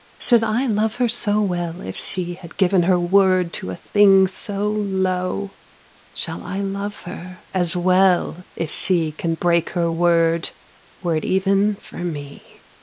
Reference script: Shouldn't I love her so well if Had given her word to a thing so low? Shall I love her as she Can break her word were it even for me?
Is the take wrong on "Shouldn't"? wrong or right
wrong